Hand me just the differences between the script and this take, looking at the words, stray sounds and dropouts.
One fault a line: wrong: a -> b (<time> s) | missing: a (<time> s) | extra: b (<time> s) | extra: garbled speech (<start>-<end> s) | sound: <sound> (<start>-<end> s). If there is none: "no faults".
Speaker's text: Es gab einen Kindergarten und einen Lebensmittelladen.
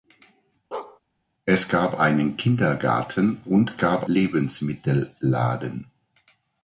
sound: bark (0.7-1.0 s)
wrong: einen -> gab (3.8 s)